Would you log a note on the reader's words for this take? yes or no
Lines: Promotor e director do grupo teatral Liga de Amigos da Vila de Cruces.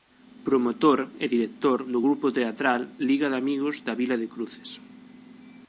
no